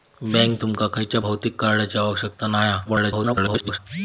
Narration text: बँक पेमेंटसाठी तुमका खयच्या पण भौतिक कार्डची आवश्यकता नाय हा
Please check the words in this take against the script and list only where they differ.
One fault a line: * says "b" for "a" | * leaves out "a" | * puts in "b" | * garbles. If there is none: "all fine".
* leaves out "पेमेंटसाठी"
* leaves out "पण"
* garbles